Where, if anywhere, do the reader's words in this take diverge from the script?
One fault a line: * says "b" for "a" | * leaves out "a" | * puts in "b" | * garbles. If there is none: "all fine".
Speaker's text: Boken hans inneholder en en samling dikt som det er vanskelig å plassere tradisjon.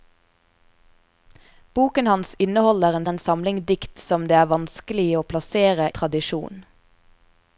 all fine